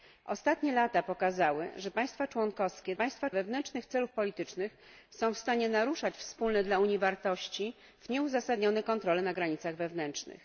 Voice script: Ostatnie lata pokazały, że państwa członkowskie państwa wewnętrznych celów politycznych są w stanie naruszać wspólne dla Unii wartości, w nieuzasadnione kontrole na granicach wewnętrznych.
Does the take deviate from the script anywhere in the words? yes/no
no